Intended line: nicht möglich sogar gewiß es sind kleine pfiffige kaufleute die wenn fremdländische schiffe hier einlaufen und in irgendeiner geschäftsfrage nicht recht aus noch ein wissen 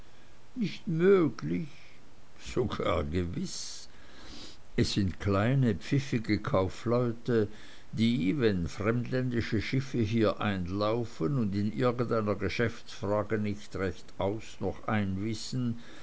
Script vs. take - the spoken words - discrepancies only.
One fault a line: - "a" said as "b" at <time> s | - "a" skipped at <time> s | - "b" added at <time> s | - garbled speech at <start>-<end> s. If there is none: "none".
none